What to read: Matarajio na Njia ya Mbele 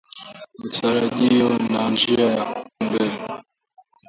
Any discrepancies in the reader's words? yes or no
no